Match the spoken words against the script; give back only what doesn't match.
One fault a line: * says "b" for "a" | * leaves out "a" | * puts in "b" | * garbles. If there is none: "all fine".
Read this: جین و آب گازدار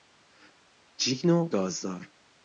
* leaves out "آب"